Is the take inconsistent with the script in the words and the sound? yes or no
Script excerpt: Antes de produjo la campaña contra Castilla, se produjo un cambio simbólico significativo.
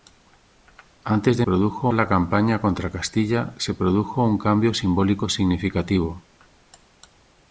no